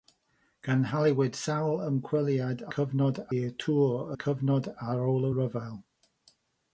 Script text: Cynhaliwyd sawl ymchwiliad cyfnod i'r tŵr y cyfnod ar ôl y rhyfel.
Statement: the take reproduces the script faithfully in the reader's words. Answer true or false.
true